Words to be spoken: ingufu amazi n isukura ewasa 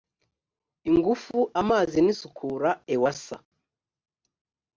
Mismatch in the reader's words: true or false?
false